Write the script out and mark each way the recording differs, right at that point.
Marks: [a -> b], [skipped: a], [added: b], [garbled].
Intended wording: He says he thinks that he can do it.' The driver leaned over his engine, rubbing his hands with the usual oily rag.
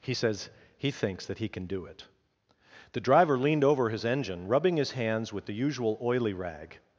He says he thinks that he can do it.' The driver leaned over his engine, rubbing his hands with the usual oily rag.